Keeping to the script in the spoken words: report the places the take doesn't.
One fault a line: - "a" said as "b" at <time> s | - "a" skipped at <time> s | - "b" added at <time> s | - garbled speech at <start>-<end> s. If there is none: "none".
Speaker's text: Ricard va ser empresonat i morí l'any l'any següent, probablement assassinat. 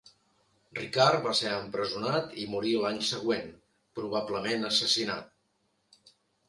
- "l'any" skipped at 3.0 s